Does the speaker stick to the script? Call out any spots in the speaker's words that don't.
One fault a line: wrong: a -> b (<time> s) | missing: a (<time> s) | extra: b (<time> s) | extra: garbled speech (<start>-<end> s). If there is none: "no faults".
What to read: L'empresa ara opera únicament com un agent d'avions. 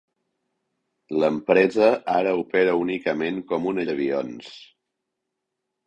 missing: agent (3.8 s)